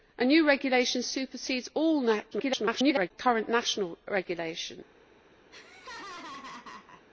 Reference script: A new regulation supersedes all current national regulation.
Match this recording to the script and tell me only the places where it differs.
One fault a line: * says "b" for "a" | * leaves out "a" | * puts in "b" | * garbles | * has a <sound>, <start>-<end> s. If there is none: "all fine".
* garbles
* has a laugh, 5.5-7.0 s